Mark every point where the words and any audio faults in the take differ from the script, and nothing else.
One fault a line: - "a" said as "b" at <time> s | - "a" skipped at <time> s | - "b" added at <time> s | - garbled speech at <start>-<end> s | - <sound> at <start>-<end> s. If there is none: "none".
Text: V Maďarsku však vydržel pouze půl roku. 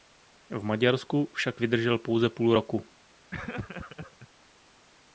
- laugh at 3.3-4.3 s